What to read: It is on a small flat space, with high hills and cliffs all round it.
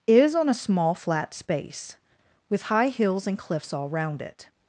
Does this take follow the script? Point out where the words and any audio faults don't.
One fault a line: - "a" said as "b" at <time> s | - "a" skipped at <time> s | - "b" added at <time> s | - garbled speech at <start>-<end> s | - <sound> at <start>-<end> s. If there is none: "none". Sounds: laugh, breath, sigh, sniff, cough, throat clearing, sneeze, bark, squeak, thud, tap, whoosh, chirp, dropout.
- "It" skipped at 0.1 s